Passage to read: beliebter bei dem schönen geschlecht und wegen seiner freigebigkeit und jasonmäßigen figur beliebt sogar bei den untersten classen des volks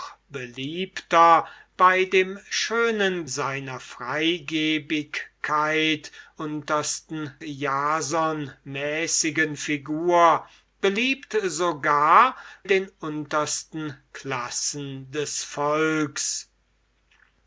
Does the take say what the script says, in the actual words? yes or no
no